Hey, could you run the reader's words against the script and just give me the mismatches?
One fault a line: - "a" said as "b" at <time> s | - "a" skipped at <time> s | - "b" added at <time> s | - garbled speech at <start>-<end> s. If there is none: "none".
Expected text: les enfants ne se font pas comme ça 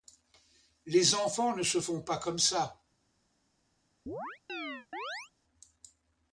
none